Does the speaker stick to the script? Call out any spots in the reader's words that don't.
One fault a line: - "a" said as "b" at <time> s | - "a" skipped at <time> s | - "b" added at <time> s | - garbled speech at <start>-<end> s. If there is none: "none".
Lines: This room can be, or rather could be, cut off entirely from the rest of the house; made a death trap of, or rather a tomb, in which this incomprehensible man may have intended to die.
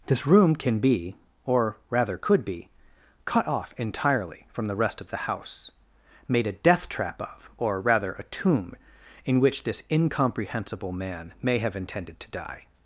none